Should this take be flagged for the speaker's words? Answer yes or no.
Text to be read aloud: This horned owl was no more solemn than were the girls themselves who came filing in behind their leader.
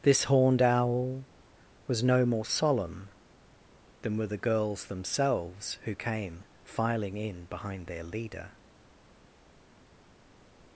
no